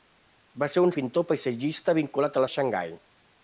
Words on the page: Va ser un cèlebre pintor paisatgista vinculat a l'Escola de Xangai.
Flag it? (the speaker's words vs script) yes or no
yes